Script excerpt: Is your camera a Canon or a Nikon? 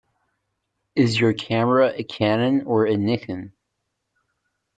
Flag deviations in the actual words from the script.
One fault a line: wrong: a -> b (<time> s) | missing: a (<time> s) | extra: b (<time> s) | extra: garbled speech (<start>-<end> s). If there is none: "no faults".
no faults